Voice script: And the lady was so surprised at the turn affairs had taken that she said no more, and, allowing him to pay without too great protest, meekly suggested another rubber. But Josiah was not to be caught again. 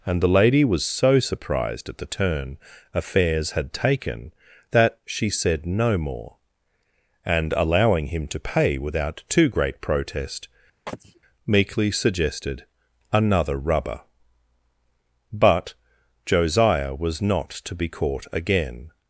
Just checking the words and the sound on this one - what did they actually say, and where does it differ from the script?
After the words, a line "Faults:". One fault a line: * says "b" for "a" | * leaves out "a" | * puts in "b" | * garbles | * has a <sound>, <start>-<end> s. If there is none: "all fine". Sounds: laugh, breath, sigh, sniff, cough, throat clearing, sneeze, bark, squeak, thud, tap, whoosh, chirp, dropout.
And the lady was so surprised at the turn affairs had taken that she said no more, and, allowing him to pay without too great protest, meekly suggested another rubber. But Josiah was not to be caught again.
Faults:
* has a sneeze, 10.9-11.2 s